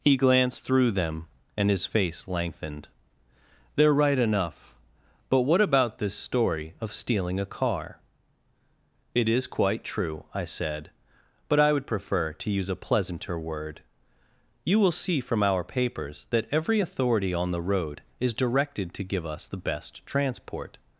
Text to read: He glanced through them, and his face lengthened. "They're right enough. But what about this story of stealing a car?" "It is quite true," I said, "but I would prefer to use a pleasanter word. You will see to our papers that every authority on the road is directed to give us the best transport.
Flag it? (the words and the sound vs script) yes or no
yes